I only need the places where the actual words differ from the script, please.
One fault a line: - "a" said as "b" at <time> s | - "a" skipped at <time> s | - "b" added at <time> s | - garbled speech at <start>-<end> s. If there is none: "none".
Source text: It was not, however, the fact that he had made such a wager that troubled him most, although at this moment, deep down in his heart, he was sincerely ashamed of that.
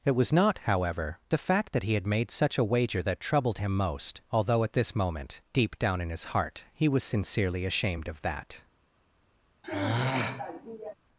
none